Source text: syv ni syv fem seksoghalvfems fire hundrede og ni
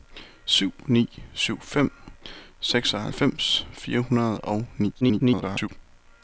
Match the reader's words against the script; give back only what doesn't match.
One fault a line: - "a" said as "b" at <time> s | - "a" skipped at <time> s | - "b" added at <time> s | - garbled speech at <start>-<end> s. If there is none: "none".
- garbled speech at 5.0-5.7 s